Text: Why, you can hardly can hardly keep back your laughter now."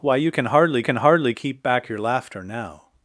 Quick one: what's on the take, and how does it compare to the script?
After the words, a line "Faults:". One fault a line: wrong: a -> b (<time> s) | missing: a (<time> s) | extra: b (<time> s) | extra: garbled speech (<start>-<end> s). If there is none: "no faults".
Why, you can hardly can hardly keep back your laughter now."
Faults:
no faults